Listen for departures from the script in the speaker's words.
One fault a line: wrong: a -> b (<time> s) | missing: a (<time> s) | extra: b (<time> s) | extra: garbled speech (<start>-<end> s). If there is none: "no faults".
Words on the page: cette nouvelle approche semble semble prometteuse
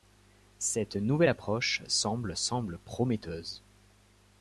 no faults